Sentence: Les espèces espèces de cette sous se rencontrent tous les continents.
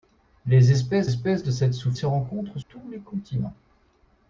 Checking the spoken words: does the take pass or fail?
pass